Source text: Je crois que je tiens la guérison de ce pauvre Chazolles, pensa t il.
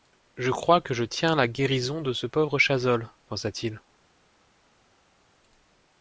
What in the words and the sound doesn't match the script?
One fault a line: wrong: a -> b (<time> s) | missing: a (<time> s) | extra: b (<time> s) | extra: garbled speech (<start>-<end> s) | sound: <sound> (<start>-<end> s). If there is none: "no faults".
no faults